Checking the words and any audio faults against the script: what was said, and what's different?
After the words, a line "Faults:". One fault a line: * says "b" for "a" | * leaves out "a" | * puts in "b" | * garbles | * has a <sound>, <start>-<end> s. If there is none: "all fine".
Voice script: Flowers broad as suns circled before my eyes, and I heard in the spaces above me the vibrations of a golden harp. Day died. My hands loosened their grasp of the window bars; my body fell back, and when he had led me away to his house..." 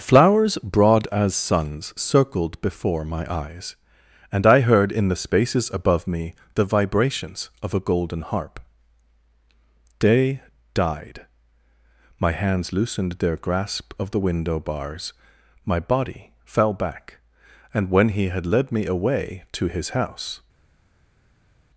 Flowers broad as suns circled before my eyes, and I heard in the spaces above me the vibrations of a golden harp. Day died. My hands loosened their grasp of the window bars; my body fell back, and when he had led me away to his house..."
Faults:
all fine